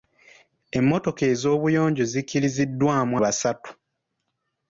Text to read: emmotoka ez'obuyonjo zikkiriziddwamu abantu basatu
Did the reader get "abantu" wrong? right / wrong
wrong